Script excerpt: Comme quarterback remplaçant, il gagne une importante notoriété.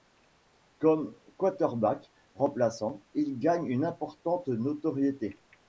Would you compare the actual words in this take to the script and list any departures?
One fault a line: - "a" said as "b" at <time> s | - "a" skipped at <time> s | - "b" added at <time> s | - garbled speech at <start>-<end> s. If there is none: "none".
none